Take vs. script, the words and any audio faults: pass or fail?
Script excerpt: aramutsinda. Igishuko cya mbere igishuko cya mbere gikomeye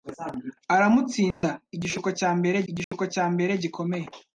fail